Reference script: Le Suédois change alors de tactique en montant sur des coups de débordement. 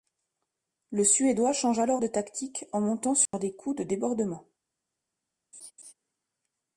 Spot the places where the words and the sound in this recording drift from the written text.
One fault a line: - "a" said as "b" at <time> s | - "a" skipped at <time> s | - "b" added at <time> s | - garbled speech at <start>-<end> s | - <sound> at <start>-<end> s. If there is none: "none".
- dropout at 3.3-3.3 s
- laugh at 5.5-5.9 s